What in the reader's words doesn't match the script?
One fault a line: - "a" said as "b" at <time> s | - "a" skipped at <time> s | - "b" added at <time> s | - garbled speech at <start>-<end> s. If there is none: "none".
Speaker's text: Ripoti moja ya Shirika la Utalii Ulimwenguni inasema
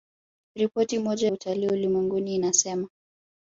- "ya Shirika la" skipped at 1.3 s